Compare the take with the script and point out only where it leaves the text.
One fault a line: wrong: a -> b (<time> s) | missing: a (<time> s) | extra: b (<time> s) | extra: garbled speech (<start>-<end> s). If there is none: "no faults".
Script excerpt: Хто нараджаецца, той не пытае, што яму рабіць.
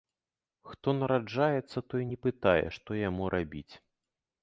no faults